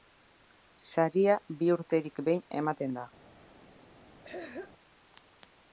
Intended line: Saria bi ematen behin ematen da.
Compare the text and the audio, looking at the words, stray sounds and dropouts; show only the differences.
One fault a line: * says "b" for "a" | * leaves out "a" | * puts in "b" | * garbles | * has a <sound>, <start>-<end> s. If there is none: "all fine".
* says "urterik" for "ematen"
* has a throat clearing, 4.2-4.7 s